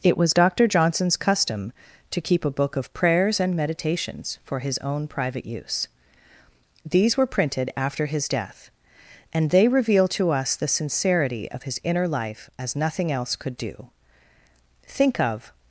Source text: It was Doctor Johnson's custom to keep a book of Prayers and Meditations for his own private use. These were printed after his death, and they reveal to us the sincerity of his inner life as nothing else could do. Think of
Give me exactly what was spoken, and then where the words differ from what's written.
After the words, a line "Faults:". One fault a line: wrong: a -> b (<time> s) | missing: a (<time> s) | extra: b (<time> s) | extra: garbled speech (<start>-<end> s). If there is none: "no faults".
It was Doctor Johnson's custom to keep a book of Prayers and Meditations for his own private use. These were printed after his death, and they reveal to us the sincerity of his inner life as nothing else could do. Think of
Faults:
no faults